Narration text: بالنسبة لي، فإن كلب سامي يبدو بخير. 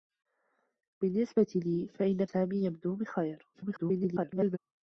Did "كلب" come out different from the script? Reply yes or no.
yes